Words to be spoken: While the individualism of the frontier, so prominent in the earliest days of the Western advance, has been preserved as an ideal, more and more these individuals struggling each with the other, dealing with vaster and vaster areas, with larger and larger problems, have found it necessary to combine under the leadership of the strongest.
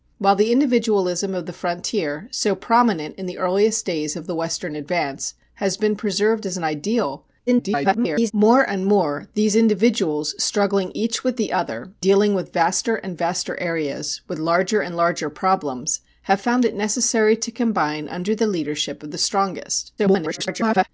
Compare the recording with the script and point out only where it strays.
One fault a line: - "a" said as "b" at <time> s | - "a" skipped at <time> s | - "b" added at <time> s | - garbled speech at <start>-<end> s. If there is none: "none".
- garbled speech at 7.5-8.3 s
- garbled speech at 20.0-20.9 s